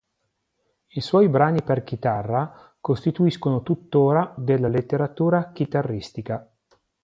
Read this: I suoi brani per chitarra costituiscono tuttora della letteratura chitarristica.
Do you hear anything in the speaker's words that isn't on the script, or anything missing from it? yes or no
no